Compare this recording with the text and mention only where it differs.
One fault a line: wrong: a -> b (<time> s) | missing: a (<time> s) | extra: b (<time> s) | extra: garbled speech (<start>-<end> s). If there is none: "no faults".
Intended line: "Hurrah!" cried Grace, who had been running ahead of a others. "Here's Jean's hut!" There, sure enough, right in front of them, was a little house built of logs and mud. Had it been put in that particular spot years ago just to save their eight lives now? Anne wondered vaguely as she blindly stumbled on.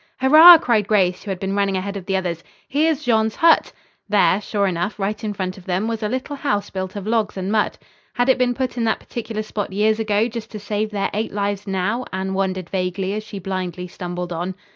wrong: a -> the (2.0 s)